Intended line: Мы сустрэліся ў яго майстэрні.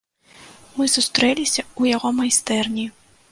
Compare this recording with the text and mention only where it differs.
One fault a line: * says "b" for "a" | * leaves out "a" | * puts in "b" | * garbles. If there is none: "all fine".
all fine